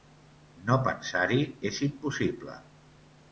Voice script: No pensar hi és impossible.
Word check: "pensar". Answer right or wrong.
right